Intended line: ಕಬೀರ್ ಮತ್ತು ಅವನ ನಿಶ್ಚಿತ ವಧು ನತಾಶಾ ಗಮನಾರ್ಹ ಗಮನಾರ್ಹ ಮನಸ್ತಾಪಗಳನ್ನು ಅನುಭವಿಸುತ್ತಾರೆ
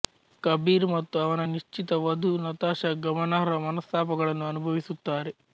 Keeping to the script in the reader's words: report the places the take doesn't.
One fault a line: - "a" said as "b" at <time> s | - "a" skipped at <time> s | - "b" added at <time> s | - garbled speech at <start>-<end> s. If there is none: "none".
- "ಗಮನಾರ್ಹ" skipped at 3.6 s